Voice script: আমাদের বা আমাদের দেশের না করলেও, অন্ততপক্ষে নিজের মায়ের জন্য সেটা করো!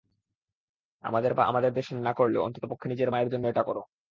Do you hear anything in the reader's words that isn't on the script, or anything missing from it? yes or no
yes